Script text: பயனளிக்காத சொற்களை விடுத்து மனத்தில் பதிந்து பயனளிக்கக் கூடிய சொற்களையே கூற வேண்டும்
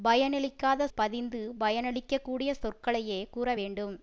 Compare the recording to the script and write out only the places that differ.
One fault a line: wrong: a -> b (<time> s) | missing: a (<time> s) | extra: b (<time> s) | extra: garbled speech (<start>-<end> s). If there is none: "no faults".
missing: சொற்களை விடுத்து மனத்தில் (0.9 s)